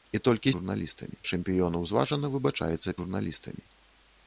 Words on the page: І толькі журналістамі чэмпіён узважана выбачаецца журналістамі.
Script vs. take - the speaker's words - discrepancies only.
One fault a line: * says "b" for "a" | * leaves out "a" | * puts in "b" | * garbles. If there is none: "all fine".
all fine